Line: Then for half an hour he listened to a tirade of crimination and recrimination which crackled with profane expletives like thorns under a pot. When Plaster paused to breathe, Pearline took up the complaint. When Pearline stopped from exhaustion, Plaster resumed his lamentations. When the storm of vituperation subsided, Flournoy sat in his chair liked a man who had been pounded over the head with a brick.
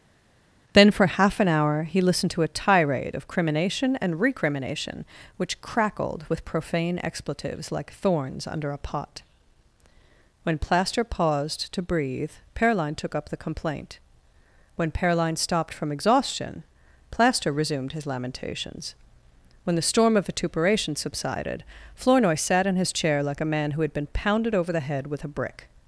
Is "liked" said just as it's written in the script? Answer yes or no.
no